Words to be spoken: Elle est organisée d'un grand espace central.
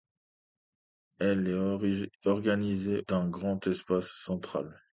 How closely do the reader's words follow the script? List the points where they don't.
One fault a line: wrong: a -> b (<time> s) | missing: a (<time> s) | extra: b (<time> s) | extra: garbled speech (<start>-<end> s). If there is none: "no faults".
no faults